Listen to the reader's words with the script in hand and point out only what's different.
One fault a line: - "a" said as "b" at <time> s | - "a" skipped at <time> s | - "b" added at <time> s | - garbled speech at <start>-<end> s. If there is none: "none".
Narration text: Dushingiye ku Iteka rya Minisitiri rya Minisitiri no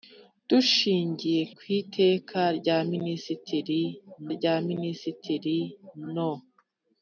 none